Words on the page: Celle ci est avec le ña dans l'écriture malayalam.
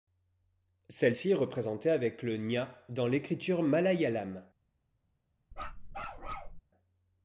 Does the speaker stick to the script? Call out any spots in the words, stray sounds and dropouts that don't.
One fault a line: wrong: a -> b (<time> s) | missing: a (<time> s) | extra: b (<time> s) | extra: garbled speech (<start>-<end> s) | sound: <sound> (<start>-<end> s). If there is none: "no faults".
extra: représentée (1.3 s)
sound: bark (5.5-6.6 s)